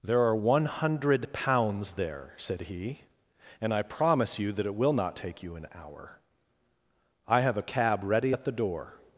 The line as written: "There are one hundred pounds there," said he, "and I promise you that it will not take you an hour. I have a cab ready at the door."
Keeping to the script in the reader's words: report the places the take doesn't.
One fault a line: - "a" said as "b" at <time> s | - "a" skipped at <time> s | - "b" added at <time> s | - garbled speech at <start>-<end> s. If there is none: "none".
none